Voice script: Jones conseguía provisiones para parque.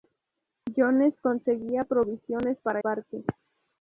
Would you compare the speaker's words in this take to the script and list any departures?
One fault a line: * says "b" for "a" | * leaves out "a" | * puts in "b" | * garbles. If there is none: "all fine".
all fine